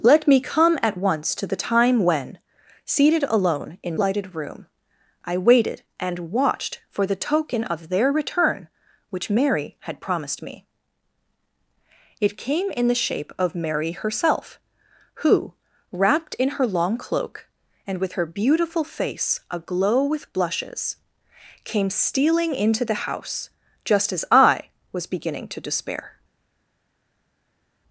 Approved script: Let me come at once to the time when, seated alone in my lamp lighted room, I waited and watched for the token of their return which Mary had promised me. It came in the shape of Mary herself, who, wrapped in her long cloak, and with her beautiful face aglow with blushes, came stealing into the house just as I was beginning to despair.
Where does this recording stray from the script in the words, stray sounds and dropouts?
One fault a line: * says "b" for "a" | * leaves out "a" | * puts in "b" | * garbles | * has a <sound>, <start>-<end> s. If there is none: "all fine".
* leaves out "my lamp"